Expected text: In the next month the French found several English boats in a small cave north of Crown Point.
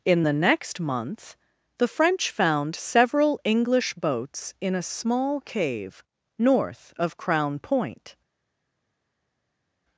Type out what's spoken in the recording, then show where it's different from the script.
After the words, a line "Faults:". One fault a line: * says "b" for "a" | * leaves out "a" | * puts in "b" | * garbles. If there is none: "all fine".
In the next month the French found several English boats in a small cave north of Crown Point.
Faults:
all fine